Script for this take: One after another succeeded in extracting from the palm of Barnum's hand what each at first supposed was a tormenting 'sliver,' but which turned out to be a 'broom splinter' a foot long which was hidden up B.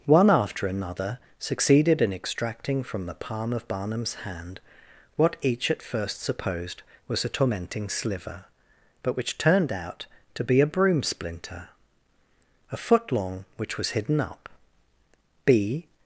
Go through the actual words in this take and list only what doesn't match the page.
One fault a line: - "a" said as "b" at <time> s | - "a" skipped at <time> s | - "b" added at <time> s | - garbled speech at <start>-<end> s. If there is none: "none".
none